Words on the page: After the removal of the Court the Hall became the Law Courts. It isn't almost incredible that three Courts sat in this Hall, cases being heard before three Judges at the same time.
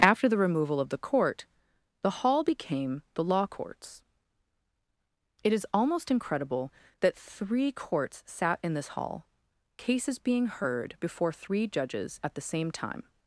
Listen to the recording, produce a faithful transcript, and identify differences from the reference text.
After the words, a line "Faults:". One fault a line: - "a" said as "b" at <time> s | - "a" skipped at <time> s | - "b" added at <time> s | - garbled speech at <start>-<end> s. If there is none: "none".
After the removal of the Court the Hall became the Law Courts. It is almost incredible that three Courts sat in this Hall, cases being heard before three Judges at the same time.
Faults:
- "isn't" said as "is" at 5.5 s